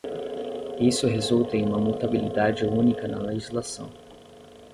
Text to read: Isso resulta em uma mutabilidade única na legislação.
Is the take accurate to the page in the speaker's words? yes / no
yes